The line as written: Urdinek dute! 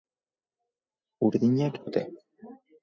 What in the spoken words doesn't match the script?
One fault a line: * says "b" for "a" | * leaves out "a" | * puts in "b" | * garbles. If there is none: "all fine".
all fine